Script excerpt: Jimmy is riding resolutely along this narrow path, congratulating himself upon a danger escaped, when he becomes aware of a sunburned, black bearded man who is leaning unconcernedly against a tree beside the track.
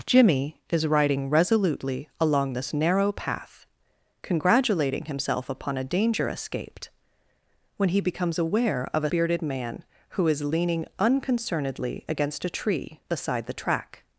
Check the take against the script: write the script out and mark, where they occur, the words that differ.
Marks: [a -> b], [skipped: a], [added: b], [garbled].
Jimmy is riding resolutely along this narrow path, congratulating himself upon a danger escaped, when he becomes aware of a [skipped: sunburned, black] bearded man who is leaning unconcernedly against a tree beside the track.